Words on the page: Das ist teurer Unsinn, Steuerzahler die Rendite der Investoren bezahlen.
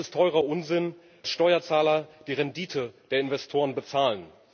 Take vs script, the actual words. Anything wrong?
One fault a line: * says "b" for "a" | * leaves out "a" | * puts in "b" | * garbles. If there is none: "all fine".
all fine